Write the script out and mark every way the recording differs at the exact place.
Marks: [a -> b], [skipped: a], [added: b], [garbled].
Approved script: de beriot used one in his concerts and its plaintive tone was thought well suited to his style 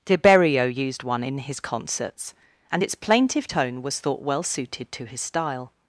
de beriot used one in his concerts and its plaintive tone was thought well suited to his style